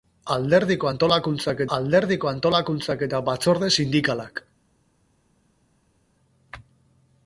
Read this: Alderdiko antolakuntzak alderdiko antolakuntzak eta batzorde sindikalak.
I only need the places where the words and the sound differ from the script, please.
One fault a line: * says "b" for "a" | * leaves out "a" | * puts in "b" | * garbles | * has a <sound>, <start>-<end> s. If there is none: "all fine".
all fine